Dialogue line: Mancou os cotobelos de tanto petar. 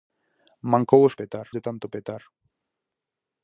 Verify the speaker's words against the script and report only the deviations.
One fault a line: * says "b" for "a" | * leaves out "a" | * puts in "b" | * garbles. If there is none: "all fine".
* says "petar" for "cotobelos"